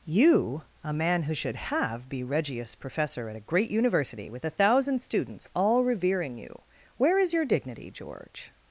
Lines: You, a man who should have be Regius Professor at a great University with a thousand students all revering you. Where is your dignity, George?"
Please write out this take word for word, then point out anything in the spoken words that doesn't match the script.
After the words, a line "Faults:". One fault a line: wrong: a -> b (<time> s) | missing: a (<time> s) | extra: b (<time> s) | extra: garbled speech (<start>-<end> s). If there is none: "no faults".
You, a man who should have be Regius Professor at a great University with a thousand students all revering you. Where is your dignity, George?"
Faults:
no faults